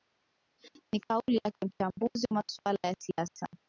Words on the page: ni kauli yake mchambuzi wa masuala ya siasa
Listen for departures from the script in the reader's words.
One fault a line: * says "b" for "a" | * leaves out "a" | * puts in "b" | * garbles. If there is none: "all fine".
all fine